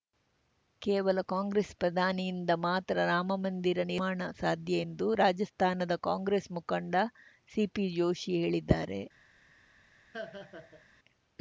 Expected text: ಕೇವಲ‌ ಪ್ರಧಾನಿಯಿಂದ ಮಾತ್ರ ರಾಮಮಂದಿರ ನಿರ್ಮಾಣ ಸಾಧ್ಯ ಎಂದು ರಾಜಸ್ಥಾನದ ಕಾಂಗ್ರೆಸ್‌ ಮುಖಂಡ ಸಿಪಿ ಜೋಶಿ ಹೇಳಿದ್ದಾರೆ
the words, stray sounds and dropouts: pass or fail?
fail